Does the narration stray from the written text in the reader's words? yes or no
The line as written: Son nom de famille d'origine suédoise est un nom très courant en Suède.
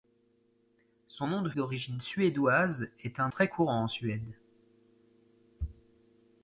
yes